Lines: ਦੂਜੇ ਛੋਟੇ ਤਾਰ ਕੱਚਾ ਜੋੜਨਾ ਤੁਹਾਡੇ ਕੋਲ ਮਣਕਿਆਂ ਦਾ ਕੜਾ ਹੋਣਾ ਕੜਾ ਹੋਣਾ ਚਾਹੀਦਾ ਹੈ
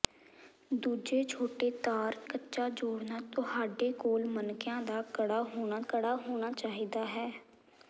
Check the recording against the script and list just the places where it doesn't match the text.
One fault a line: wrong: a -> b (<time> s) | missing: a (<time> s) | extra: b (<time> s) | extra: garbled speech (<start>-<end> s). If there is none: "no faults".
no faults